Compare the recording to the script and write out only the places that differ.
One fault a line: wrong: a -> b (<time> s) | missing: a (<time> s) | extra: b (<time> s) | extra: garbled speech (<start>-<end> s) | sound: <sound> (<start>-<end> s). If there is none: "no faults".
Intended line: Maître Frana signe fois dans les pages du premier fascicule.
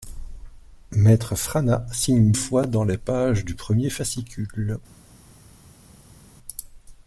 no faults